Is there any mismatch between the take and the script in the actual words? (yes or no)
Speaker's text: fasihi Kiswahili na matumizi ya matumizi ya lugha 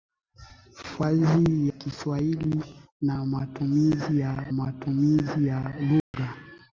no